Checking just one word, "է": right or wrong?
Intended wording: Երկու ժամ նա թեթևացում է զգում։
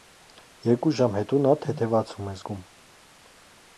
right